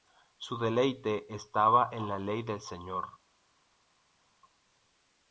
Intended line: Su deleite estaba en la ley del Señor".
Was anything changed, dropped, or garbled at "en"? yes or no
no